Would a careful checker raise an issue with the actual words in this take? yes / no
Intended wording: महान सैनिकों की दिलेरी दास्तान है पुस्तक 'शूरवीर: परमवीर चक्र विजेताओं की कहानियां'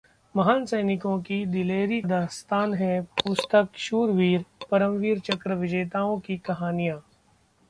no